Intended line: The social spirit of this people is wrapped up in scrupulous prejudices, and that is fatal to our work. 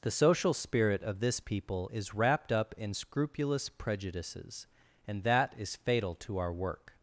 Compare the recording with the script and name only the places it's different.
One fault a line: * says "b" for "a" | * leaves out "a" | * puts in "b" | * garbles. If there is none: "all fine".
all fine